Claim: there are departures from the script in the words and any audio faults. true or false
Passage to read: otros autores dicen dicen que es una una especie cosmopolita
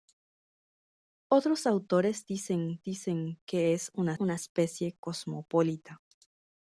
false